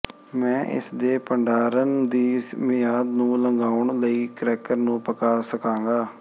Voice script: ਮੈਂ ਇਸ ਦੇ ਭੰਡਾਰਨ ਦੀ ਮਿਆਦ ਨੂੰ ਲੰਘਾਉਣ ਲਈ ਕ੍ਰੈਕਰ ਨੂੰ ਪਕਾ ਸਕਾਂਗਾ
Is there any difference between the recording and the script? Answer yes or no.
no